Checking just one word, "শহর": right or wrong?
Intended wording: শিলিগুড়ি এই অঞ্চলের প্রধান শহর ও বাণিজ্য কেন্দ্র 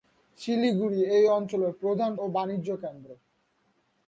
wrong